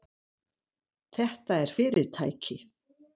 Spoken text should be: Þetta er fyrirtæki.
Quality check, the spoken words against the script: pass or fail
pass